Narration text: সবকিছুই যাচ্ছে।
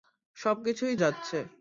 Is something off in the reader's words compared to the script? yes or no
no